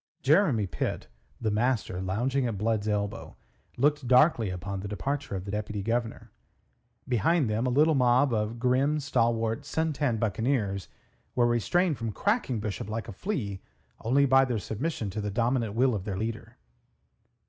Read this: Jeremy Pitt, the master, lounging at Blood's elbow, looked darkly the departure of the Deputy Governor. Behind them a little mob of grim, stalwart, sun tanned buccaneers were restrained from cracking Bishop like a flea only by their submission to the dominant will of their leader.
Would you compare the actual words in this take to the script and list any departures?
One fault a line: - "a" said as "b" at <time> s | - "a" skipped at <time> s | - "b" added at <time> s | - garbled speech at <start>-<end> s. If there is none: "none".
- "upon" added at 4.5 s